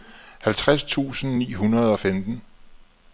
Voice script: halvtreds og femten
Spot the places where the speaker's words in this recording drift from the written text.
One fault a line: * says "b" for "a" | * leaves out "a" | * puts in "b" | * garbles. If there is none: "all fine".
* puts in "tusind ni hundrede"